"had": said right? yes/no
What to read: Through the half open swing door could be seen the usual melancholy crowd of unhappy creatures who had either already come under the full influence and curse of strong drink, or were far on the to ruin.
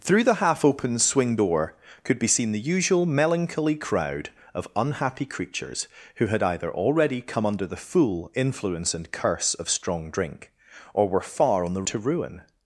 yes